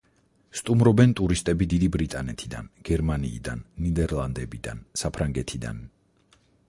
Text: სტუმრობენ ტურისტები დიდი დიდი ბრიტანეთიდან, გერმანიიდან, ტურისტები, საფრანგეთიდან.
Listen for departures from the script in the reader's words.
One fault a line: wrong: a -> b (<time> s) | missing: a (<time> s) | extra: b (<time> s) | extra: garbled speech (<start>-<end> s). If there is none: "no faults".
missing: დიდი (1.9 s)
wrong: ტურისტები -> ნიდერლანდებიდან (3.9 s)